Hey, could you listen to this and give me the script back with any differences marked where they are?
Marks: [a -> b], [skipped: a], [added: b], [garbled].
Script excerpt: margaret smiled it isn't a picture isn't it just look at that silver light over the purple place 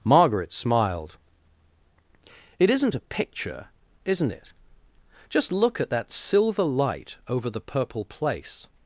margaret smiled it isn't a picture isn't it just look at that silver light over the purple place